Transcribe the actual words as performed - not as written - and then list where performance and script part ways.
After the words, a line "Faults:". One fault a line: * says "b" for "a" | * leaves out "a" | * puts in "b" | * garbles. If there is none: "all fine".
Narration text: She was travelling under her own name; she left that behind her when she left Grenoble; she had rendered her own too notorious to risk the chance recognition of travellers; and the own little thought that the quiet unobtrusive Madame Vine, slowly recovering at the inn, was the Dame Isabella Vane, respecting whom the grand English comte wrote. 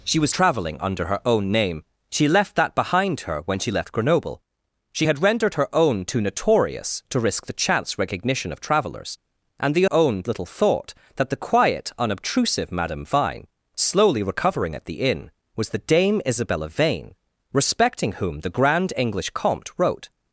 She was travelling under her own name; she left that behind her when she left Grenoble; she had rendered her own too notorious to risk the chance recognition of travellers; and the own little thought that the quiet unobtrusive Madame Vine, slowly recovering at the inn, was the Dame Isabella Vane, respecting whom the grand English comte wrote.
Faults:
all fine